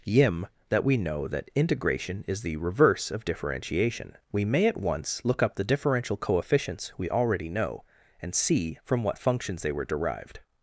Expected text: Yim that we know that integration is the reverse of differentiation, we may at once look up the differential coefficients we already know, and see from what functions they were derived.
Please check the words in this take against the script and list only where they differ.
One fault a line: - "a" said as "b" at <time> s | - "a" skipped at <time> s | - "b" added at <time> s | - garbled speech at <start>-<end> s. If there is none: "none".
none